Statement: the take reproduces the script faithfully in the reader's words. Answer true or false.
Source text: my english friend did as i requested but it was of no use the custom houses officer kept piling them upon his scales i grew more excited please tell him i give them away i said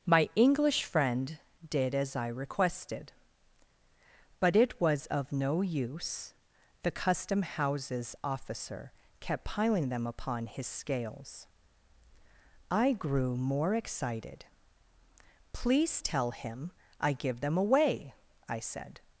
true